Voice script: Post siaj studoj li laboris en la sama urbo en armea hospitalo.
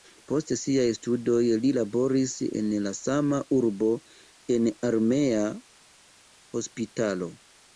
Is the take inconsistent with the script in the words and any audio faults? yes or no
no